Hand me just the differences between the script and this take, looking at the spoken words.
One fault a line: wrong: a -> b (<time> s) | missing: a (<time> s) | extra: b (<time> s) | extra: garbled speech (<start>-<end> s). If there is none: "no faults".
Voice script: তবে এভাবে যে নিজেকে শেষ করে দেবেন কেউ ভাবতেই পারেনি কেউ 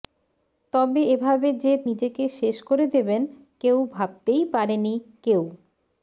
no faults